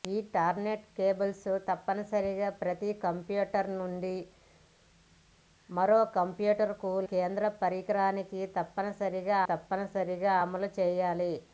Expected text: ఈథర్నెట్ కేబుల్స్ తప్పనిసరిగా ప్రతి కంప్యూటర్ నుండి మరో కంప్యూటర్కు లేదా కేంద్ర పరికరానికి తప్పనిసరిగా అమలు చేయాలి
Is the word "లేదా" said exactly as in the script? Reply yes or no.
no